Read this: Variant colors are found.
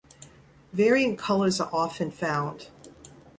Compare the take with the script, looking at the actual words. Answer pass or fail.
fail